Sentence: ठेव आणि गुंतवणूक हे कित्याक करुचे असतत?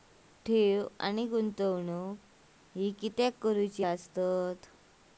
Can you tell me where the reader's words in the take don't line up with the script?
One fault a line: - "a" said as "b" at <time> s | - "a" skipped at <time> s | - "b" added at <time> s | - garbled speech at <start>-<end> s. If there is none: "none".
none